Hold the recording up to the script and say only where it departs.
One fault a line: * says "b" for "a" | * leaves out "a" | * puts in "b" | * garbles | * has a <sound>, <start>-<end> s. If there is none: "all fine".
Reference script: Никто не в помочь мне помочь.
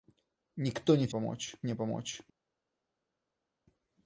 all fine